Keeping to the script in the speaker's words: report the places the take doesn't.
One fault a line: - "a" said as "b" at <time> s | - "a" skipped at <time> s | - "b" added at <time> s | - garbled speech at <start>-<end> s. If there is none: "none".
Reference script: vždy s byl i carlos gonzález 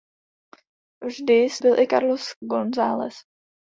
none